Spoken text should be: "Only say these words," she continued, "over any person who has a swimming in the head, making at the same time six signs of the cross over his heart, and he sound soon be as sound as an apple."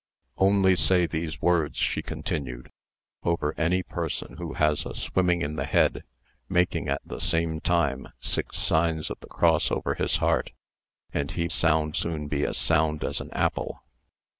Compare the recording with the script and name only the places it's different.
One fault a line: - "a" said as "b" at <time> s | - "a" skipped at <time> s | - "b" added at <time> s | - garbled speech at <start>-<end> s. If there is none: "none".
none